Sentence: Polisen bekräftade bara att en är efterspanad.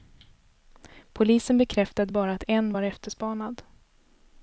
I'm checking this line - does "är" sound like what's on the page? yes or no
no